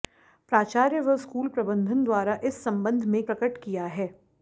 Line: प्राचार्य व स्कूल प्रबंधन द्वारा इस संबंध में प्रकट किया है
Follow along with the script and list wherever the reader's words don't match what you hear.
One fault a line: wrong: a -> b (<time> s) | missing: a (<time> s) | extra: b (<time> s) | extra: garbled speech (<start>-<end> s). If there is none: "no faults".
no faults